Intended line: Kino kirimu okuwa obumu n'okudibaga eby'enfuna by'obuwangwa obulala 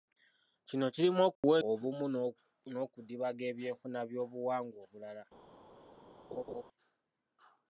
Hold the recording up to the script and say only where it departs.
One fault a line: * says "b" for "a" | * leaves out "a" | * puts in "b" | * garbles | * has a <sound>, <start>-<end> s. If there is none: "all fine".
* has a dropout, 1.4-1.4 s
* has a laugh, 6.3-6.6 s